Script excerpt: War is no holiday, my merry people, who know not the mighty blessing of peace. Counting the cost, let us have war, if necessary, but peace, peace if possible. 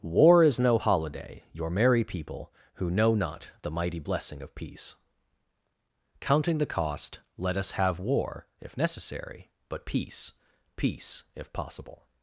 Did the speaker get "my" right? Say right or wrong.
wrong